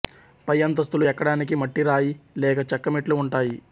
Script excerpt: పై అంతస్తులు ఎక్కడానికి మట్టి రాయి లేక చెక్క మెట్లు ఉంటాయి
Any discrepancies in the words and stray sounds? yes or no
no